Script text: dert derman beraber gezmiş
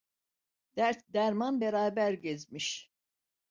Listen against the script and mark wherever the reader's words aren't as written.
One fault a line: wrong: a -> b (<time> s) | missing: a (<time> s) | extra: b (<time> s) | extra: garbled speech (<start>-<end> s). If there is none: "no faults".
no faults